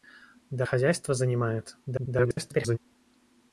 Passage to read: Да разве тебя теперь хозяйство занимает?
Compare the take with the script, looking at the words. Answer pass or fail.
fail